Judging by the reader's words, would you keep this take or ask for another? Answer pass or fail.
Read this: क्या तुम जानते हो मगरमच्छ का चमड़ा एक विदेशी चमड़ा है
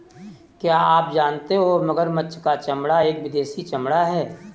fail